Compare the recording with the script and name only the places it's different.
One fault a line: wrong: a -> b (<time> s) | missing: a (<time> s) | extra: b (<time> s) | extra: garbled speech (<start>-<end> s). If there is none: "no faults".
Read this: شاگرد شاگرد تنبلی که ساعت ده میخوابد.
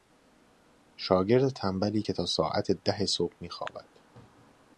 missing: شاگرد (1.5 s)
extra: تا (2.1 s)
extra: صبح (3.1 s)